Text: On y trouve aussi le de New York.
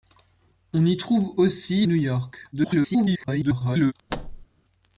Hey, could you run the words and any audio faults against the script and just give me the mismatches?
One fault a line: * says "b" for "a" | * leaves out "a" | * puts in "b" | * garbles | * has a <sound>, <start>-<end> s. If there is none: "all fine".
* leaves out "le de"
* garbles
* has a thud, 4.1-4.5 s